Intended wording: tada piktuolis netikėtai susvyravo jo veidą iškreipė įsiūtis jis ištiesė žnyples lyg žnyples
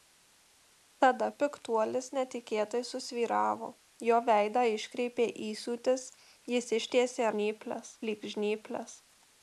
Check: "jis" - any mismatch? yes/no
no